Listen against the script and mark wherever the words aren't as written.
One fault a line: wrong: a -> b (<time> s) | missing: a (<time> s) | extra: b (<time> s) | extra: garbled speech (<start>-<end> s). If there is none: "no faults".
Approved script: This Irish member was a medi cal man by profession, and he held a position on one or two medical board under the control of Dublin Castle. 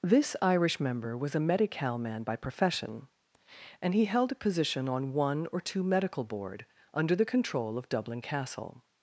no faults